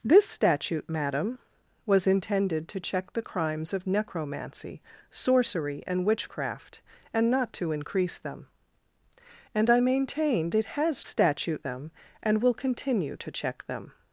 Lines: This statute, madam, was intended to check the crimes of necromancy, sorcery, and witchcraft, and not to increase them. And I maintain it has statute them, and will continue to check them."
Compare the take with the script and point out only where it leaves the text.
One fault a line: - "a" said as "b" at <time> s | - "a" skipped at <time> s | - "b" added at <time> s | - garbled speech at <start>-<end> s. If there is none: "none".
none